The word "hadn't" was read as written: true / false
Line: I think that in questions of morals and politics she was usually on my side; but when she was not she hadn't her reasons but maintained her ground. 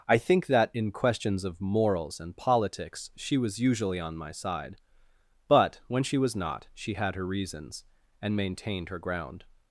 false